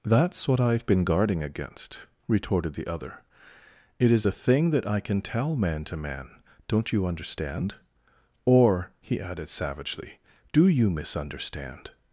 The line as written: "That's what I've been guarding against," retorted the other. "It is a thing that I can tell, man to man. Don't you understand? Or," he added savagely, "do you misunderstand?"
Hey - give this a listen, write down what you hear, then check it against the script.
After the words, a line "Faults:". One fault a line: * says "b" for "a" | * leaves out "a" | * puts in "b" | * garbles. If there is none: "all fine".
"That's what I've been guarding against," retorted the other. "It is a thing that I can tell, man to man. Don't you understand? Or," he added savagely, "do you misunderstand?"
Faults:
all fine